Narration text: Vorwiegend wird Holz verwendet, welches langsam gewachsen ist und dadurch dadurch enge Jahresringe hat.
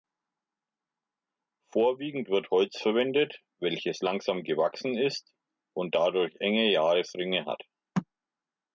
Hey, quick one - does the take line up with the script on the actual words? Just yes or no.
no